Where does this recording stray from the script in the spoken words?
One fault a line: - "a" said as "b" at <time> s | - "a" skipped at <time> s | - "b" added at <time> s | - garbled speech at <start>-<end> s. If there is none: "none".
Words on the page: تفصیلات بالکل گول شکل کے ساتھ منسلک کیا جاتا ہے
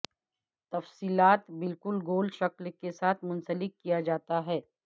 none